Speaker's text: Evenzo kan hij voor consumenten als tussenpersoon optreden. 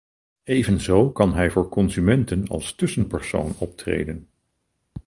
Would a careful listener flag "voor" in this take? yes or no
no